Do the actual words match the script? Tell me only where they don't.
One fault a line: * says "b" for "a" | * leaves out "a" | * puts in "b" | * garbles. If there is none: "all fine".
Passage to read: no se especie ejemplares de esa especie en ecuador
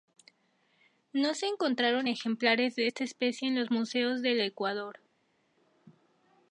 * says "encontraron" for "especie"
* says "esta" for "esa"
* puts in "los museos del"